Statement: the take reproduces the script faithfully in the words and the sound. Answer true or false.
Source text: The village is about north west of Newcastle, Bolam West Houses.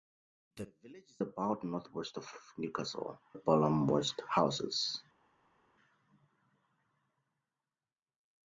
true